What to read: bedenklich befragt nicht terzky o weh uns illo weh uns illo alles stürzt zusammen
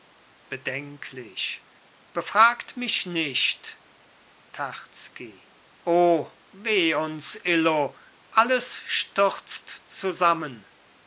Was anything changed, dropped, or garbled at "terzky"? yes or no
no